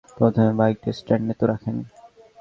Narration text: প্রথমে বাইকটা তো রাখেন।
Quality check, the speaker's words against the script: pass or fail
fail